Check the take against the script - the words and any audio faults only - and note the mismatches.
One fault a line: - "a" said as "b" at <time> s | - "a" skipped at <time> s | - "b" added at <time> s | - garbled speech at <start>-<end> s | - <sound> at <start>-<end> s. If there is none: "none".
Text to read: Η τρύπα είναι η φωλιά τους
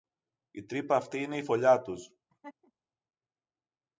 - "αυτή" added at 0.9 s
- laugh at 2.3-2.7 s